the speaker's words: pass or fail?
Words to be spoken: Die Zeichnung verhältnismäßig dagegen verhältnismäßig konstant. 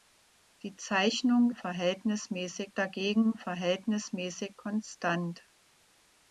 pass